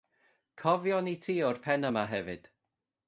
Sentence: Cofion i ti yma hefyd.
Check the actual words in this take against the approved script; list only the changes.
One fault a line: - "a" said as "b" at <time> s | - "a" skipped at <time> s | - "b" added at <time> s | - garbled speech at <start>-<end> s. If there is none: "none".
- "o'r pen" added at 1.5 s